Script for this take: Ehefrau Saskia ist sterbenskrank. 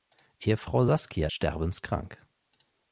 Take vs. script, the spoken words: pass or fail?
fail